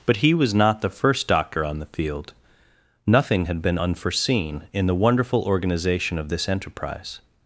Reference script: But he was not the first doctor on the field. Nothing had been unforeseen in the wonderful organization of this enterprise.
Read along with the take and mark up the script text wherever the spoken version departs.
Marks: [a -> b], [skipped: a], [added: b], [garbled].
But he was not the first doctor on the field. Nothing had been unforeseen in the wonderful organization of this enterprise.